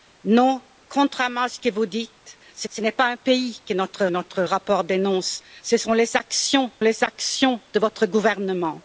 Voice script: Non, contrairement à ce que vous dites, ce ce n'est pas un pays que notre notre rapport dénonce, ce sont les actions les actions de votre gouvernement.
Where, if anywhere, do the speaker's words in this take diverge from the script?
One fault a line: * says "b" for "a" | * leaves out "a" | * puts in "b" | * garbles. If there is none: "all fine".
all fine